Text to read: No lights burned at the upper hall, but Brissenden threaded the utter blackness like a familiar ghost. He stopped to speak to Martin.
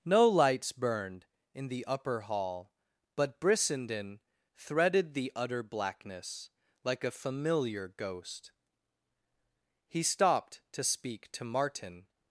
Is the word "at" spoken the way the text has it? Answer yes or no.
no